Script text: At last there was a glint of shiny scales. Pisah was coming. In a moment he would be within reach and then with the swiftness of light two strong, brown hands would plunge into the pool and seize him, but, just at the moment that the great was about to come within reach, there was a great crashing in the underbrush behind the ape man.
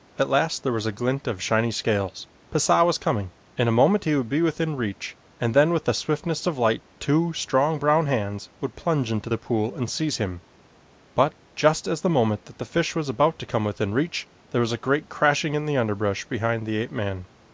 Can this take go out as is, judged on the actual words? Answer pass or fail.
fail